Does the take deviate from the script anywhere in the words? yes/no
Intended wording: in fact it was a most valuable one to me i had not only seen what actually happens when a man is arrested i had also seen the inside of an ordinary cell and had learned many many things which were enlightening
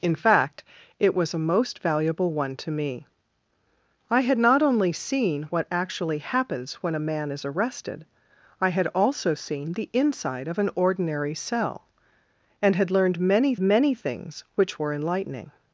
no